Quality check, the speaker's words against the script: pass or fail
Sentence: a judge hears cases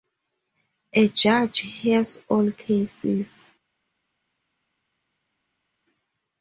fail